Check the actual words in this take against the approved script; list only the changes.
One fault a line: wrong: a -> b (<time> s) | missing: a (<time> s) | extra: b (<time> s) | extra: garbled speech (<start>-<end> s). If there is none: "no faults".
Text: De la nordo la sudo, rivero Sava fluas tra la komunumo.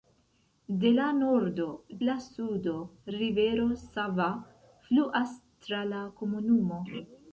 no faults